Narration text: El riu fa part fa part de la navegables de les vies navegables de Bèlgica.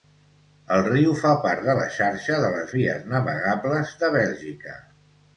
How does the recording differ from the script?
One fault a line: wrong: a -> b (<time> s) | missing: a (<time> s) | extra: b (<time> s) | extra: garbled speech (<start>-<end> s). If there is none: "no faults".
missing: fa part (1.6 s)
wrong: navegables -> xarxa (2.0 s)